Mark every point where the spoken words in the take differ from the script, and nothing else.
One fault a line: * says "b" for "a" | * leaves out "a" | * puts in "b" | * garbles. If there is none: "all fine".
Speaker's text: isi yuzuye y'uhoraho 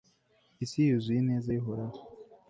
* puts in "ineza"